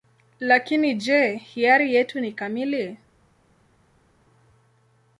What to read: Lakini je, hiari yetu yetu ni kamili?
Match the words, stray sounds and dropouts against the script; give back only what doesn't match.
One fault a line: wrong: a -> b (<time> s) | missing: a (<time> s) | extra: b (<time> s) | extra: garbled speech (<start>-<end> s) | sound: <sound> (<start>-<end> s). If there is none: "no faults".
missing: yetu (2.2 s)